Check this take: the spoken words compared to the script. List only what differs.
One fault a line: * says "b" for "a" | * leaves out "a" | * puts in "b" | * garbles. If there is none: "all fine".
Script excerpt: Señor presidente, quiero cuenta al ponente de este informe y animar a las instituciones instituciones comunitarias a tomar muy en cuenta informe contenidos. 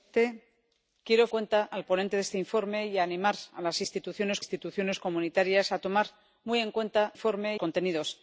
all fine